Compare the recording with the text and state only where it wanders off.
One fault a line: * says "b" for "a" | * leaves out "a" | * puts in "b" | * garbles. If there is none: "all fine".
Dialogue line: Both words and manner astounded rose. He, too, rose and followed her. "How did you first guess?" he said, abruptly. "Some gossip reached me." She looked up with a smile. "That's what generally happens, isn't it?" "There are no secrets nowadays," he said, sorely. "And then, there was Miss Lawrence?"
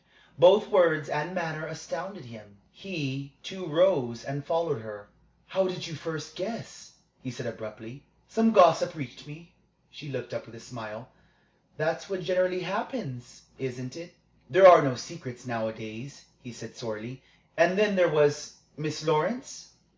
* says "him" for "rose"